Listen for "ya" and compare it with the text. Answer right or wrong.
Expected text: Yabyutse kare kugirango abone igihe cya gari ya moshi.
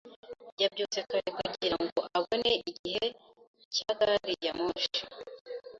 right